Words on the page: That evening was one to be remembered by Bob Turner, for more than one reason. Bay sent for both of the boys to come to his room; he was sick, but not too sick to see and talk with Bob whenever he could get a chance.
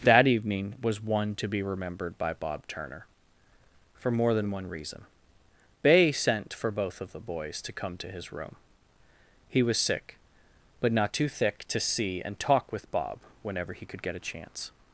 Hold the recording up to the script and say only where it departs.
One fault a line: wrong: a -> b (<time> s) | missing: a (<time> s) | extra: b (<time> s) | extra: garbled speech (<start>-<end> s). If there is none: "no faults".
wrong: sick -> thick (11.3 s)